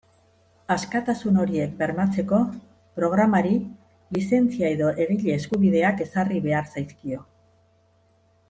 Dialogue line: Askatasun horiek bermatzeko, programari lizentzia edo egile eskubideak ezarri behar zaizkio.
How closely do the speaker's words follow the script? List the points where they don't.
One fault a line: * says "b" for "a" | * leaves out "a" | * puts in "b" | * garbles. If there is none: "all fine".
all fine